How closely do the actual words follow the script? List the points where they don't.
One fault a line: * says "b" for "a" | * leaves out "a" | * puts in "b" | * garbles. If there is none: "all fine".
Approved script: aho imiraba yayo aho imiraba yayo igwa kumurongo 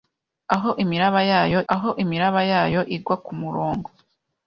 all fine